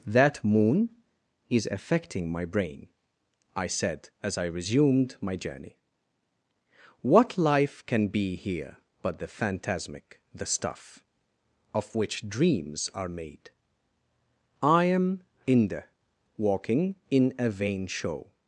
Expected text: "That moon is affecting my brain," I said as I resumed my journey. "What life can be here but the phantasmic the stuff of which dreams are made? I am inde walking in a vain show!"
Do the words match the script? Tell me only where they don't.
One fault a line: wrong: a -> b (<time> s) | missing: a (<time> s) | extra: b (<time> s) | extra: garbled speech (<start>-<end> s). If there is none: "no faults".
no faults